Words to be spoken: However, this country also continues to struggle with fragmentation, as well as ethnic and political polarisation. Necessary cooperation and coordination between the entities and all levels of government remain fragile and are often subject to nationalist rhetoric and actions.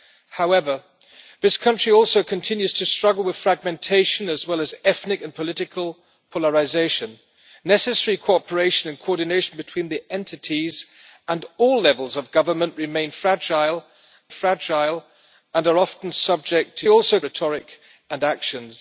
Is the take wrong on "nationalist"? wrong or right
wrong